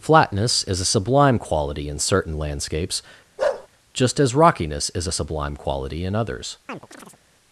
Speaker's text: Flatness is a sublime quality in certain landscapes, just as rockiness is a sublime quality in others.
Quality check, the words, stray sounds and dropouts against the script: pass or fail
fail